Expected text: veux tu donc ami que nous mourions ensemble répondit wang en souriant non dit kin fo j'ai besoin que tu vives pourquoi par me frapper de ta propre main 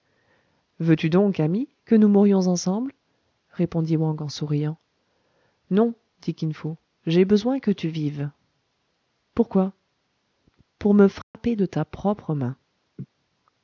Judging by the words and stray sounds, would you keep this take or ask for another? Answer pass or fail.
fail